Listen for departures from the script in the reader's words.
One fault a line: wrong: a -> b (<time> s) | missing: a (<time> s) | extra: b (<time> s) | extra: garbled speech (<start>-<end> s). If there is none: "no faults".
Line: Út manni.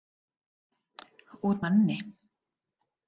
no faults